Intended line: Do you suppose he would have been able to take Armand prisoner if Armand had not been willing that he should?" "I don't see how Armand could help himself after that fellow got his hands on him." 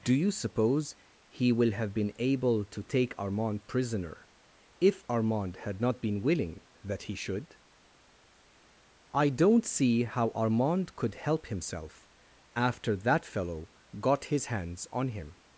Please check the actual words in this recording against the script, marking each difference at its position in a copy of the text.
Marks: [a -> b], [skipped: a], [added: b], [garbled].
Do you suppose he [would -> will] have been able to take Armand prisoner if Armand had not been willing that he should?" "I don't see how Armand could help himself after that fellow got his hands on him."